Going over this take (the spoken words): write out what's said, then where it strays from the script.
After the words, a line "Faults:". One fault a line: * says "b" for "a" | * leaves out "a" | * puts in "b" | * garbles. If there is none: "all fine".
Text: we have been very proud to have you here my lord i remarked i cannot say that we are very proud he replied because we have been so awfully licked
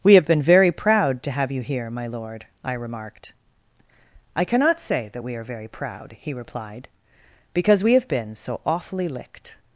we have been very proud to have you here my lord i remarked i cannot say that we are very proud he replied because we have been so awfully licked
Faults:
all fine